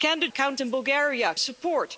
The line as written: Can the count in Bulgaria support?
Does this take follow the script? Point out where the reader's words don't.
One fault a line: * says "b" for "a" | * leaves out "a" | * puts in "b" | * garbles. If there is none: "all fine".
all fine